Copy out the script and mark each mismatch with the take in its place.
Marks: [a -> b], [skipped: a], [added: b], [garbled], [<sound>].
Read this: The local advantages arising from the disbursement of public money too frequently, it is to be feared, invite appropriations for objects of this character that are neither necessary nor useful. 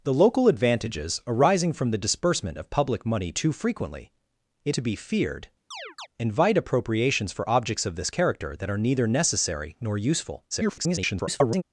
The local advantages arising from the disbursement of public money too frequently, it [skipped: is] to be feared, [chirp] invite appropriations for objects of this character that are neither necessary nor useful. [garbled]